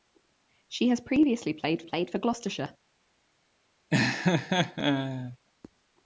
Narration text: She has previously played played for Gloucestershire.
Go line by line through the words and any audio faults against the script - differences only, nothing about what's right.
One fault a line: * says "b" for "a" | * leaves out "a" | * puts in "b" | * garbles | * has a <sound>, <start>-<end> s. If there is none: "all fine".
* has a laugh, 3.9-5.4 s